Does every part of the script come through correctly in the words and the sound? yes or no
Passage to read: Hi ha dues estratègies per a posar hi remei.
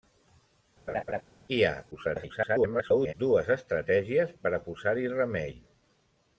no